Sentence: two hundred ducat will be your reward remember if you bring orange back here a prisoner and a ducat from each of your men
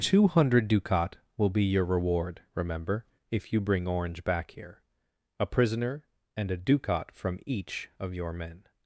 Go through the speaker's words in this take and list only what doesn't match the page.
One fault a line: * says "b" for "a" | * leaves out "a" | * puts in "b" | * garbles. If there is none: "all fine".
all fine